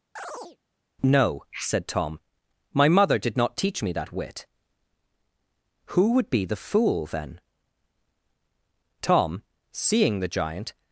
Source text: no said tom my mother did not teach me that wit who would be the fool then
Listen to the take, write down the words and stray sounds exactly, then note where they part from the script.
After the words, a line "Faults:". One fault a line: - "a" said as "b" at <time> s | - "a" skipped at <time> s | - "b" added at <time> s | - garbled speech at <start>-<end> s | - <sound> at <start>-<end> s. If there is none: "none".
no said tom my mother did not teach me that wit who would be the fool then tom seeing the giant
Faults:
- chirp at 0.2-0.6 s
- "tom seeing the giant" added at 9.0 s